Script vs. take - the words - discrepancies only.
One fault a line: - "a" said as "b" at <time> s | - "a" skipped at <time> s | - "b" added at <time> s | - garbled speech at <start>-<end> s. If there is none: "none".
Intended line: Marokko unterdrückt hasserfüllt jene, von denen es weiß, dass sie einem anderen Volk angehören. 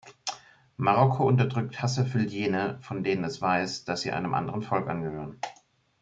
none